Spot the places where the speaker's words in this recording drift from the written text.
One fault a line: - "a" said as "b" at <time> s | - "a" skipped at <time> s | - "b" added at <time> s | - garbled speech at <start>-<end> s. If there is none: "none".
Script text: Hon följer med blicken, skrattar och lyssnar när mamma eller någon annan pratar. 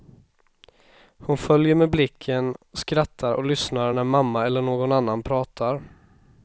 none